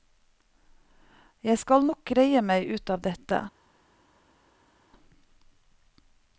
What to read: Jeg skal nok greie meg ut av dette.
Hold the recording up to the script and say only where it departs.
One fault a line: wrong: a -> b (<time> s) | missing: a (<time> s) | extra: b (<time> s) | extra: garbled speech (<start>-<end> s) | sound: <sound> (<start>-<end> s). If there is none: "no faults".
no faults